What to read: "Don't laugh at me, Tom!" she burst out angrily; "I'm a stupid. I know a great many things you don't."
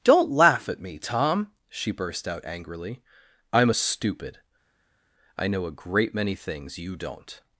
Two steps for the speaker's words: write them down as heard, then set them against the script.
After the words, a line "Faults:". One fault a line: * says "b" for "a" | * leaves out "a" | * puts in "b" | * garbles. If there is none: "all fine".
"Don't laugh at me, Tom!" she burst out angrily; "I'm a stupid. I know a great many things you don't."
Faults:
all fine